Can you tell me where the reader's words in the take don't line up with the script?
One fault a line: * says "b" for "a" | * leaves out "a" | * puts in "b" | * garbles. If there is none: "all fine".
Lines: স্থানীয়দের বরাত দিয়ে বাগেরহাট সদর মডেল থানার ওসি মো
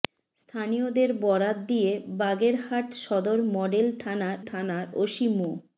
* puts in "থানার"